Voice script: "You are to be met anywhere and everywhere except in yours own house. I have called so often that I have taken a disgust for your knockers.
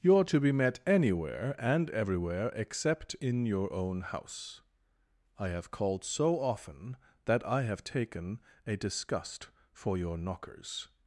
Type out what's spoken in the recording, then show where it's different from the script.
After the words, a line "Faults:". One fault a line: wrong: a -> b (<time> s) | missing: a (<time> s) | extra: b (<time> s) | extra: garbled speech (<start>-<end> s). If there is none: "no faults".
"You are to be met anywhere and everywhere except in your own house. I have called so often that I have taken a disgust for your knockers.
Faults:
wrong: yours -> your (3.5 s)